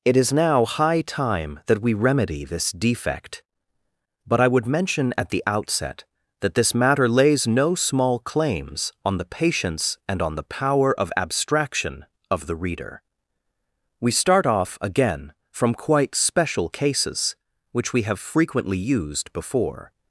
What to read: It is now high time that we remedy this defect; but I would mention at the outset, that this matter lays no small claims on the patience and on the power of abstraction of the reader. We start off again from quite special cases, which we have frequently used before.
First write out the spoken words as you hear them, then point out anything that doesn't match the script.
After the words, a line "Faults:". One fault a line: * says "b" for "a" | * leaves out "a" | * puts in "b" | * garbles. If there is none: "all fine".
It is now high time that we remedy this defect; but I would mention at the outset, that this matter lays no small claims on the patience and on the power of abstraction of the reader. We start off again from quite special cases, which we have frequently used before.
Faults:
all fine